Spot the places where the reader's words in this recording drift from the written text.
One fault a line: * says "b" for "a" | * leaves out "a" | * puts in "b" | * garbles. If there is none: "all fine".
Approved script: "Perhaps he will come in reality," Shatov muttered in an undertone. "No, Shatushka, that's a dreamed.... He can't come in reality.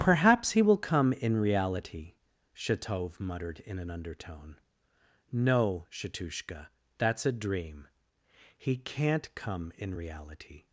* says "dream" for "dreamed"